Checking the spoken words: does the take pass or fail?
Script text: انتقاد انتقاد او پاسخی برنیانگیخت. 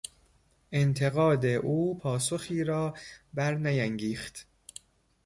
fail